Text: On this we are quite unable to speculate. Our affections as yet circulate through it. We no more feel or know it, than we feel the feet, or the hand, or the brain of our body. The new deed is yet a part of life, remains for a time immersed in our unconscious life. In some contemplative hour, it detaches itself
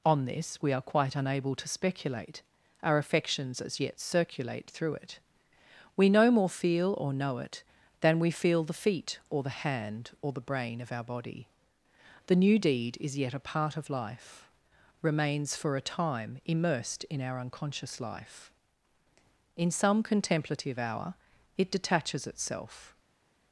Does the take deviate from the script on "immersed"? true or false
false